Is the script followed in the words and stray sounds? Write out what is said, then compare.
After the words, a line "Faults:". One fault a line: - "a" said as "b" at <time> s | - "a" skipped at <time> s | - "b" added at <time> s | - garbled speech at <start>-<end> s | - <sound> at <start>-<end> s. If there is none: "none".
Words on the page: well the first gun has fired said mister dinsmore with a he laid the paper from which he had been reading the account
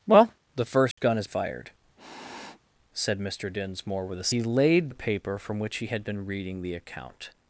well the first gun has fired said mister dinsmore with a he laid the paper from which he had been reading the account
Faults:
- dropout at 0.9-1.0 s
- sniff at 2.0-2.6 s